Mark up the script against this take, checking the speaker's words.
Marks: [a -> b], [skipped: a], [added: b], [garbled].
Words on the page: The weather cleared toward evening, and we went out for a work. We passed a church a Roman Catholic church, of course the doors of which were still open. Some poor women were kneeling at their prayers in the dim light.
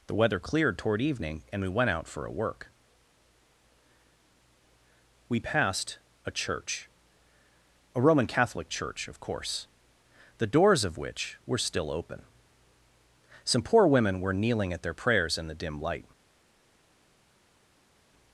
The weather cleared toward evening, and we went out for a work. We passed a church a Roman Catholic church, of course the doors of which were still open. Some poor women were kneeling at their prayers in the dim light.